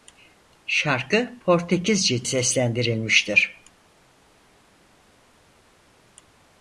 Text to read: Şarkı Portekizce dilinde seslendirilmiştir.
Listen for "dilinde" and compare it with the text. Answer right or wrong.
wrong